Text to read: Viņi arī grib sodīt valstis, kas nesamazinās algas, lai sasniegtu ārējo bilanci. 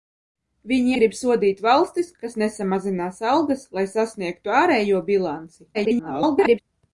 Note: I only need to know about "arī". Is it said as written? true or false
false